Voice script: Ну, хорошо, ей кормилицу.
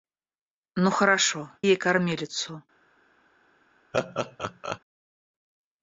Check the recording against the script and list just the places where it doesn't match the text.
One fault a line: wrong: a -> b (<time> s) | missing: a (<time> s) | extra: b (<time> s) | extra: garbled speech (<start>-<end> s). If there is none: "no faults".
no faults